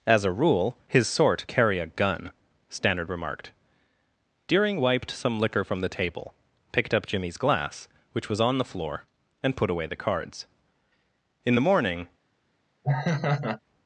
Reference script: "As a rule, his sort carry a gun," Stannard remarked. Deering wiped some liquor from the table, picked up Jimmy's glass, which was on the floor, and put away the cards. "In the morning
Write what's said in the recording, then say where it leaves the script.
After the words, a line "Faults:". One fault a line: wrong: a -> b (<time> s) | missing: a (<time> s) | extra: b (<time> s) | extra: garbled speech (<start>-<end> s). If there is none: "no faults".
"As a rule, his sort carry a gun," Stannard remarked. Deering wiped some liquor from the table, picked up Jimmy's glass, which was on the floor, and put away the cards. "In the morning
Faults:
no faults